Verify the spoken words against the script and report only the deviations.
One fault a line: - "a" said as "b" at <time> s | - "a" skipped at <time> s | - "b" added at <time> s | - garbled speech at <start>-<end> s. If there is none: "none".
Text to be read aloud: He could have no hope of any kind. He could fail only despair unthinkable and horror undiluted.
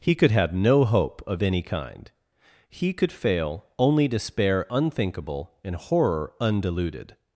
none